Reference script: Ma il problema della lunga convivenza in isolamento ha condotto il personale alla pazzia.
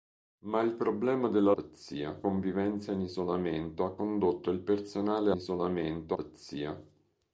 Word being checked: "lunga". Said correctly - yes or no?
no